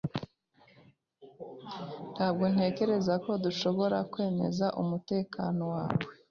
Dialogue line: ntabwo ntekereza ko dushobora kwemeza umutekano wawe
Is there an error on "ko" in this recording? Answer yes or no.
no